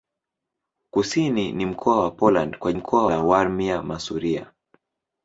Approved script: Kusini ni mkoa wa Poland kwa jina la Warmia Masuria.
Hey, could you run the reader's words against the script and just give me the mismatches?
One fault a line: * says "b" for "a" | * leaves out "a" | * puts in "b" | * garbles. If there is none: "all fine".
* says "mkoa" for "jina"